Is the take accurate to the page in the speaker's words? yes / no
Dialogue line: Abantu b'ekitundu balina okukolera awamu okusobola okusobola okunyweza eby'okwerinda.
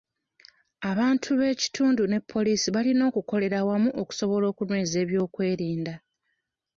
no